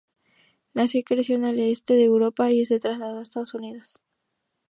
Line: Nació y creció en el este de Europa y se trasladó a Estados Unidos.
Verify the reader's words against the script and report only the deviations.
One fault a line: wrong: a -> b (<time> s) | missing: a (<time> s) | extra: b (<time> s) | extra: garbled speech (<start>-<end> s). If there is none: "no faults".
no faults